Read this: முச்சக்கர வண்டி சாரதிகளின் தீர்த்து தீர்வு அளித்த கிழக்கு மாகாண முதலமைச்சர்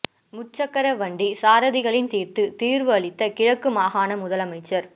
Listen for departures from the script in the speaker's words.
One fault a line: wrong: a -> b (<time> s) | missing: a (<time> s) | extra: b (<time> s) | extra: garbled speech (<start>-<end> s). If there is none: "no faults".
no faults